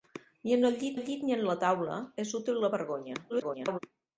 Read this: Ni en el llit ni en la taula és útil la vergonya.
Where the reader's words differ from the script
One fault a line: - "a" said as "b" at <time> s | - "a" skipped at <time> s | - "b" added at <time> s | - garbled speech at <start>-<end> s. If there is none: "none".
- "el llit" added at 1.0 s
- garbled speech at 3.3-3.8 s